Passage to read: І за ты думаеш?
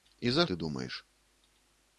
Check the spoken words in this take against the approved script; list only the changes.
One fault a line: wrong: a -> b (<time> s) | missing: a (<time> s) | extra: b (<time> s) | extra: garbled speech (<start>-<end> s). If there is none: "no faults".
no faults